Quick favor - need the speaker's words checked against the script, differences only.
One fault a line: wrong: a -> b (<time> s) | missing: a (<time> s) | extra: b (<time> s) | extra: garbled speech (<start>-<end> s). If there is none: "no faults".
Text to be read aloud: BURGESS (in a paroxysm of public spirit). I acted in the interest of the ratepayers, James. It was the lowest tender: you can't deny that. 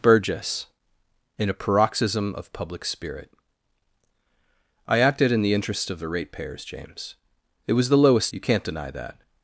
missing: tender (8.3 s)